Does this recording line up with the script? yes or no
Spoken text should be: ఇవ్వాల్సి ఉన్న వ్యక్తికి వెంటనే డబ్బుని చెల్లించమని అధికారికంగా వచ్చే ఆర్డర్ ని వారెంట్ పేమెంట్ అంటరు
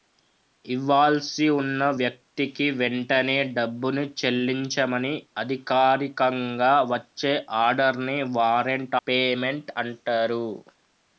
yes